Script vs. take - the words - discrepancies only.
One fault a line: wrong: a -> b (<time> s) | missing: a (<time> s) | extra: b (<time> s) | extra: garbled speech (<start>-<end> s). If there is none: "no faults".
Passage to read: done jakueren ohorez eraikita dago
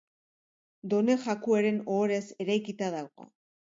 no faults